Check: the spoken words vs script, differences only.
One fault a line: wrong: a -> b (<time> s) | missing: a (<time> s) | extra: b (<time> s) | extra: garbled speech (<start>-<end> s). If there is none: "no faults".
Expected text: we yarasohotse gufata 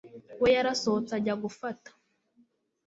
extra: ajya (1.2 s)